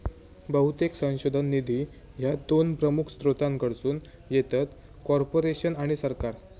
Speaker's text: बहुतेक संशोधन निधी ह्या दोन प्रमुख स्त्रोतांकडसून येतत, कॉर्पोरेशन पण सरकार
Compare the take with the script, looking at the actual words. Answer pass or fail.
fail